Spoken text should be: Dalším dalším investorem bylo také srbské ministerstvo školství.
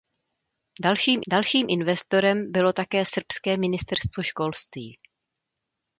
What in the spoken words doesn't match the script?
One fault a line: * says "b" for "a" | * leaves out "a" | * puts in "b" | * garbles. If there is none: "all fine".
all fine